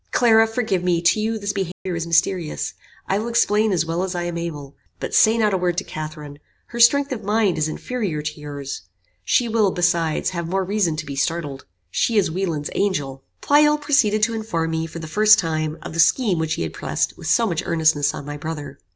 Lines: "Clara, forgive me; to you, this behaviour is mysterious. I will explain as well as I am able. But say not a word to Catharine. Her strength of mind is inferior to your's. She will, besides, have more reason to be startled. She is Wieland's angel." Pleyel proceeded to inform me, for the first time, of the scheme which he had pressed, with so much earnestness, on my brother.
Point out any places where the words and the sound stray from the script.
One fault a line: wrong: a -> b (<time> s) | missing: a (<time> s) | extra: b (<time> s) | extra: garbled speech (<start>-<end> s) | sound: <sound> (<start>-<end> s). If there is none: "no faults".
sound: dropout (1.7-1.9 s)